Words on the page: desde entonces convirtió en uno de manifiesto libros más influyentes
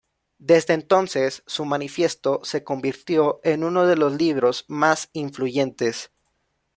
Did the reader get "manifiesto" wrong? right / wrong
wrong